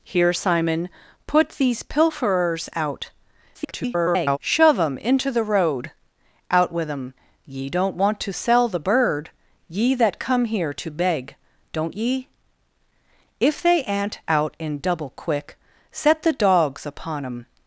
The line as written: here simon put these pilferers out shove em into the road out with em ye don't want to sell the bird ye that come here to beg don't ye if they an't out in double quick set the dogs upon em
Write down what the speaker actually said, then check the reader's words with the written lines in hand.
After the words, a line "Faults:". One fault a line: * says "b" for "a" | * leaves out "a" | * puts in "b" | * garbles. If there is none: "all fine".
here simon put these pilferers out [garbled] shove em into the road out with em ye don't want to sell the bird ye that come here to beg don't ye if they an't out in double quick set the dogs upon em
Faults:
* garbles